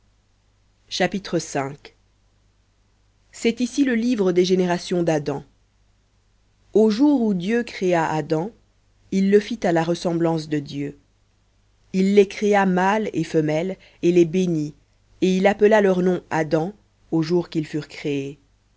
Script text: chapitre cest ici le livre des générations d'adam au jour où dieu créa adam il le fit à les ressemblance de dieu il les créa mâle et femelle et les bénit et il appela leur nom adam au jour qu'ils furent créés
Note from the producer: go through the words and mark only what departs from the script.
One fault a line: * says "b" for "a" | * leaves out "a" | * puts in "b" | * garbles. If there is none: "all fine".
* says "la" for "les"